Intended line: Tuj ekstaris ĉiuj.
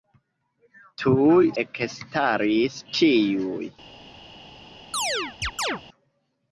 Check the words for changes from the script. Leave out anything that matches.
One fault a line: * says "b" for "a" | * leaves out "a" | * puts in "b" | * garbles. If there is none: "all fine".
all fine